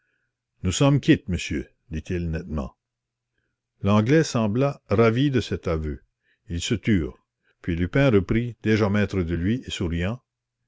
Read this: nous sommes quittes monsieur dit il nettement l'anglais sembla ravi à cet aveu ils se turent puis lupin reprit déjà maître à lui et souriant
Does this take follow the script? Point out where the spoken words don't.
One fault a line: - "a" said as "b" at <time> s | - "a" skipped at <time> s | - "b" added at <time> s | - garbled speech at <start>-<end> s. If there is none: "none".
- "à" said as "de" at 5.3 s
- "à" said as "de" at 9.2 s